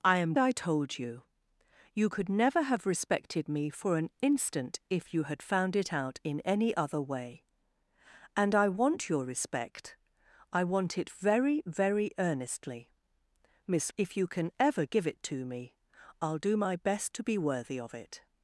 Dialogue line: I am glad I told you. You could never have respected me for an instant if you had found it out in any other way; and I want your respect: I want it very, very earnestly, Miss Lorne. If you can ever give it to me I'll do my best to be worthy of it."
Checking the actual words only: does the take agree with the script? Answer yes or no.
no